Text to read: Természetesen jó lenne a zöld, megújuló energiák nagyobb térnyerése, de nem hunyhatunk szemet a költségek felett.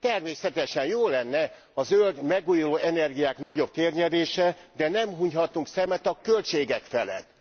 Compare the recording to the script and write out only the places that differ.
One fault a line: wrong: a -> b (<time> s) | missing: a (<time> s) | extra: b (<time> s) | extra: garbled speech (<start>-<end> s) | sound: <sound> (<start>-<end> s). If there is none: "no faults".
sound: dropout (3.4-3.6 s)